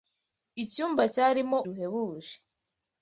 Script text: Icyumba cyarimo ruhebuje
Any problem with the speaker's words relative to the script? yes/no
no